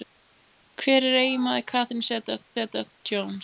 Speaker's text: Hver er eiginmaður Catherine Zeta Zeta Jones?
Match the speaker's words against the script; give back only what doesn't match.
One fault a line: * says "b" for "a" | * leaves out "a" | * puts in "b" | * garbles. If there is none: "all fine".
all fine